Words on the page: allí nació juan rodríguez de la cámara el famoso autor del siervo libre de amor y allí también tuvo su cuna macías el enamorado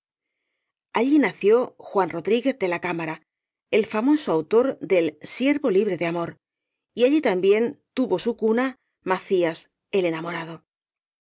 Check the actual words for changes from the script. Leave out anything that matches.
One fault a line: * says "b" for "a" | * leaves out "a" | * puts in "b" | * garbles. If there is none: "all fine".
all fine